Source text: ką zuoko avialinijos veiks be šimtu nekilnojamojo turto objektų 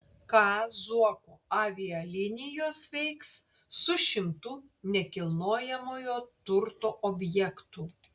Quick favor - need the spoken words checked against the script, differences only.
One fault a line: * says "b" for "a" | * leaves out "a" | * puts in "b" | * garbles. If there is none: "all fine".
* says "su" for "be"